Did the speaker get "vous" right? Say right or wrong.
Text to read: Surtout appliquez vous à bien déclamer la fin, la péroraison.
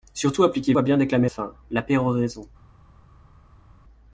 wrong